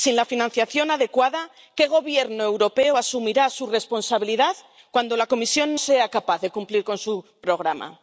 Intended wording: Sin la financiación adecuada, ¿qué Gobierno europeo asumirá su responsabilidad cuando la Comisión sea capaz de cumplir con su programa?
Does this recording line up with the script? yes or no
yes